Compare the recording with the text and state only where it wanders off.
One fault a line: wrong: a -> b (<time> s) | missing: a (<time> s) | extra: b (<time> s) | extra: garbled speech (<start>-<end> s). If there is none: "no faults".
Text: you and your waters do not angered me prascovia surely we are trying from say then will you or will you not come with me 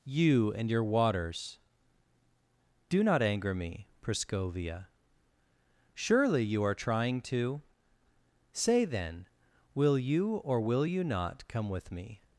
wrong: angered -> anger (3.2 s)
wrong: we -> you (6.4 s)
wrong: from -> to (7.2 s)